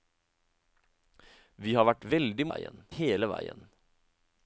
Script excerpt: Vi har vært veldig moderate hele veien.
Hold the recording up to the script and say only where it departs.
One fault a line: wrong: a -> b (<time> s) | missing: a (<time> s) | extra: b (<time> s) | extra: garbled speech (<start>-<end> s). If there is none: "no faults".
wrong: moderate -> veien (2.5 s)